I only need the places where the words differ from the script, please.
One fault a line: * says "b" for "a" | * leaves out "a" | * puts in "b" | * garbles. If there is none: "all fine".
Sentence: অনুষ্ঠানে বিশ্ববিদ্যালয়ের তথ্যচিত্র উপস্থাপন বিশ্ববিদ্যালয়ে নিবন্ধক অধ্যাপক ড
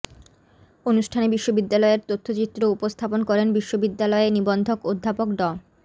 * puts in "করেন"